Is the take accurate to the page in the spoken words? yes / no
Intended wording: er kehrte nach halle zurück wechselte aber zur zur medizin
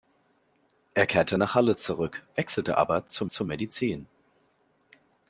yes